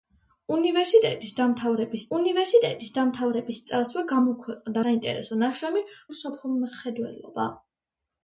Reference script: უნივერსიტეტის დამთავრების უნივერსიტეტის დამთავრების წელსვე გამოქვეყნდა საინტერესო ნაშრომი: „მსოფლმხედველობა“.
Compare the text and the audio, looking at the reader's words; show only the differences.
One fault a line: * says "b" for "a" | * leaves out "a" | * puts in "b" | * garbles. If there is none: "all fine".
all fine